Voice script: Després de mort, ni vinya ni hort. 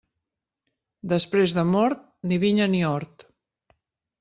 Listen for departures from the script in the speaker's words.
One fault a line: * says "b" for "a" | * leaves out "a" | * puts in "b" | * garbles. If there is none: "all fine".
all fine